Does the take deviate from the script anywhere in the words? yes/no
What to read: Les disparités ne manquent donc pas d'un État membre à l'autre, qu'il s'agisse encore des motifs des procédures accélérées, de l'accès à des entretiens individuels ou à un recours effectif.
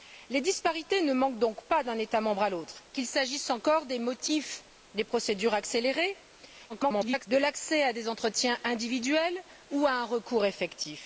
yes